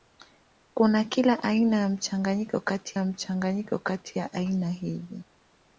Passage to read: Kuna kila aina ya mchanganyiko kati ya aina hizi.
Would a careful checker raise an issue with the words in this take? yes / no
yes